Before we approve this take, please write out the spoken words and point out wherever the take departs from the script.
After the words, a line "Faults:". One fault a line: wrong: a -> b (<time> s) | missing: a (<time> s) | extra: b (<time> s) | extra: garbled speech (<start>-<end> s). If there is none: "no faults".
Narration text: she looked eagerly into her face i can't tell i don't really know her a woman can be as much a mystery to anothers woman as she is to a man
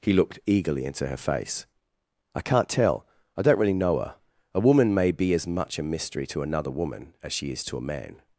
he looked eagerly into her face i can't tell i don't really know her a woman may be as much a mystery to another woman as she is to a man
Faults:
wrong: she -> he (0.0 s)
wrong: can -> may (4.9 s)
wrong: anothers -> another (6.4 s)